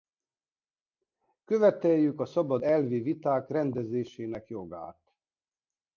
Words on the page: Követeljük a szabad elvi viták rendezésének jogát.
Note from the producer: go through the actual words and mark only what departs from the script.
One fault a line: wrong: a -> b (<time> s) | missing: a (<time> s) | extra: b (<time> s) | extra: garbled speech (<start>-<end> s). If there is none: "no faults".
no faults